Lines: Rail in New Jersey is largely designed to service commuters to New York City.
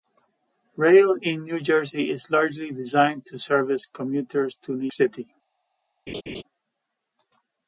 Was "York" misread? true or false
true